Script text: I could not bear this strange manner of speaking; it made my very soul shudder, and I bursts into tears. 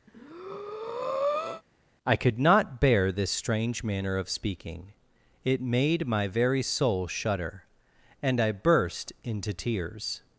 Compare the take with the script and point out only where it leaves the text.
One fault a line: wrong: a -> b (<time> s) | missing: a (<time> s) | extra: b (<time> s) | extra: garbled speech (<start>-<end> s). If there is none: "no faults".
wrong: bursts -> burst (8.5 s)